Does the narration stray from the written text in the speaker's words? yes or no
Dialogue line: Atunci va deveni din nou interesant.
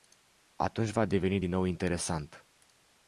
no